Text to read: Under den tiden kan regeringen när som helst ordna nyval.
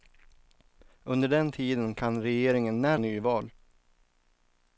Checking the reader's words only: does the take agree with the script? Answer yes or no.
no